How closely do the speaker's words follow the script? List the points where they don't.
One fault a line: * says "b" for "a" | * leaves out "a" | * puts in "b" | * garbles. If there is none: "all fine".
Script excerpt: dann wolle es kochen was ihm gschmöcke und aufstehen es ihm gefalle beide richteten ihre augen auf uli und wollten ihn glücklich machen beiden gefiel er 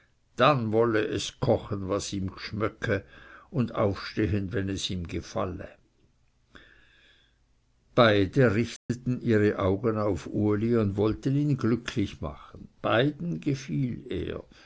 * puts in "wenn"